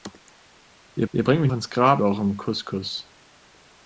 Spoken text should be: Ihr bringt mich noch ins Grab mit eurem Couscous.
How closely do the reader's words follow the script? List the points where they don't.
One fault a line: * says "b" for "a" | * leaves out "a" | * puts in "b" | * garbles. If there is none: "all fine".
* puts in "ihr"
* leaves out "noch"
* leaves out "mit"